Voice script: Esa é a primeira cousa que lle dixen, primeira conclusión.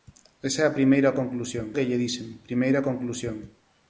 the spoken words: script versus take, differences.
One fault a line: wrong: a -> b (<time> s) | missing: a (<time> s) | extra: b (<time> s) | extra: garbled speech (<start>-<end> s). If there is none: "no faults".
wrong: cousa -> conclusión (1.2 s)